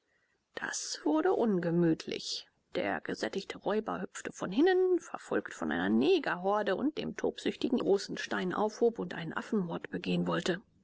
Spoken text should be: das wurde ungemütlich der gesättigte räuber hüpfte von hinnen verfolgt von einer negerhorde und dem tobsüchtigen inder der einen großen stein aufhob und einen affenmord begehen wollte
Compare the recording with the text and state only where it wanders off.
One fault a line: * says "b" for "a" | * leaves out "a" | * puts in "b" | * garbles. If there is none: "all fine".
* leaves out "inder der einen"